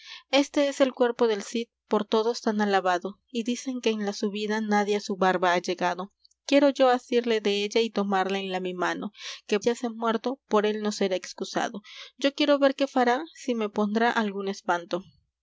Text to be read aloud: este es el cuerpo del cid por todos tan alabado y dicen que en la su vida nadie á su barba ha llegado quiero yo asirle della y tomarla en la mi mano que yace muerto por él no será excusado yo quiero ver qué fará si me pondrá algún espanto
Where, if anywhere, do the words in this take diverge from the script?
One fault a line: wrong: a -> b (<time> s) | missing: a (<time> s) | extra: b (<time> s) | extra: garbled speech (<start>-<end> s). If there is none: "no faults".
no faults